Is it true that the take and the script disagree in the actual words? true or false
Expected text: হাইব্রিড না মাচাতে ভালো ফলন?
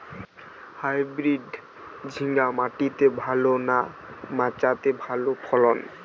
true